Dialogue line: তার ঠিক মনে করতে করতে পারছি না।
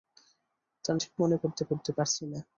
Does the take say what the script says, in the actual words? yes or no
yes